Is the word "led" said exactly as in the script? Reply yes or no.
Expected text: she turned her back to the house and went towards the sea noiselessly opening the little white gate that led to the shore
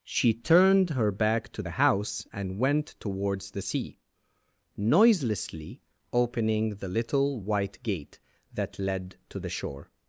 yes